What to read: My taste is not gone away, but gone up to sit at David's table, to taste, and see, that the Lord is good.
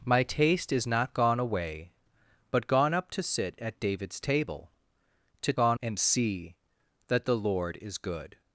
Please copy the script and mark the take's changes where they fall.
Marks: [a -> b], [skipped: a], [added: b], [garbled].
My taste is not gone away, but gone up to sit at David's table, to [taste, -> gone] and see, that the Lord is good.